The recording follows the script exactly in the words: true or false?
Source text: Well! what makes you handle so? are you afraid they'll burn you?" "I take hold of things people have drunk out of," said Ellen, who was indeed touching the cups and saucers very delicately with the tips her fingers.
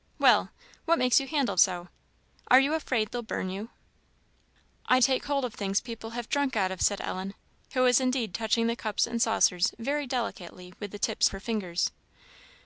true